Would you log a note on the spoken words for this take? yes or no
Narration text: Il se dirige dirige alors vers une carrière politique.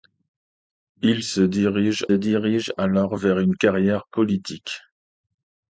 no